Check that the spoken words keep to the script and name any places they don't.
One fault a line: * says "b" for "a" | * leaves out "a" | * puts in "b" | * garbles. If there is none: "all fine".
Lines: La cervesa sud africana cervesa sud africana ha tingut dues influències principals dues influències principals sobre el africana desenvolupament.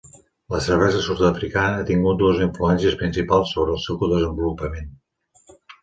* leaves out "cervesa sud africana"
* leaves out "dues influències principals"
* says "seu" for "africana"